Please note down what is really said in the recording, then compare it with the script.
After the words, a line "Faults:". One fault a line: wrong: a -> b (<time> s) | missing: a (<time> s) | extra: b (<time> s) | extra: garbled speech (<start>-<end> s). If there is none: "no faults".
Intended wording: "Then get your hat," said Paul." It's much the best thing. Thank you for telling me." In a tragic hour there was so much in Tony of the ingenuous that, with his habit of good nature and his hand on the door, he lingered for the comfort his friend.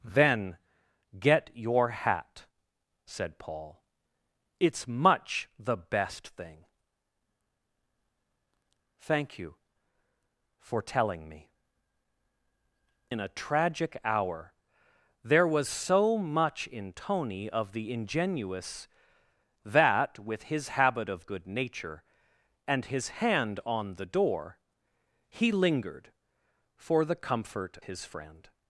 "Then get your hat," said Paul." It's much the best thing. Thank you for telling me." In a tragic hour there was so much in Tony of the ingenuous that, with his habit of good nature and his hand on the door, he lingered for the comfort his friend.
Faults:
no faults